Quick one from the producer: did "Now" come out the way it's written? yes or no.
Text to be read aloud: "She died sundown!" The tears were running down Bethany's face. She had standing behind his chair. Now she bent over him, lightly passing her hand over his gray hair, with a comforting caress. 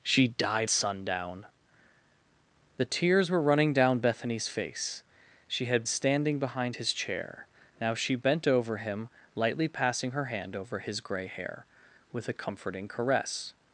yes